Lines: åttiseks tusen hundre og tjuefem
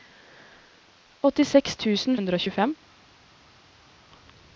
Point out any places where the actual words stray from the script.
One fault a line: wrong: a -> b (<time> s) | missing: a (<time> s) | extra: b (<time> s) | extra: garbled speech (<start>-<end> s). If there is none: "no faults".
no faults